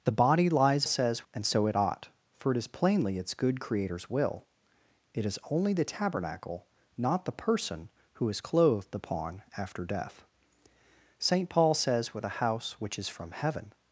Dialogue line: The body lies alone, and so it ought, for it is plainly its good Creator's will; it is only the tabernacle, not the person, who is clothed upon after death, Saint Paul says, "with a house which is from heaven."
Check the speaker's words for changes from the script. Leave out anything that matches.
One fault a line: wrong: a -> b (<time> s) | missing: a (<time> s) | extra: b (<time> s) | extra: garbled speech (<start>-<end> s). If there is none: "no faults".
wrong: alone -> says (0.8 s)